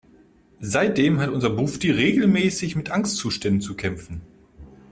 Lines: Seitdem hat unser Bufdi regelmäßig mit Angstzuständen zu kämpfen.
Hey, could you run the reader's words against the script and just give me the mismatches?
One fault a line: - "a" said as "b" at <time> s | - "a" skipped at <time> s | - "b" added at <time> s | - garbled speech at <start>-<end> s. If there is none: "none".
none